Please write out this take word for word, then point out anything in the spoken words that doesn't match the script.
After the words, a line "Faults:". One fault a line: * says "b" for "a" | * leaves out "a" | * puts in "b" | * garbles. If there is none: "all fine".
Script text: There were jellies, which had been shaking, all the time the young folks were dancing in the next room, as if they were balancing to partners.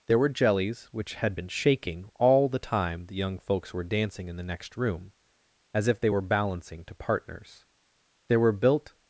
There were jellies, which had been shaking, all the time the young folks were dancing in the next room, as if they were balancing to partners. There were built
Faults:
* puts in "There were built"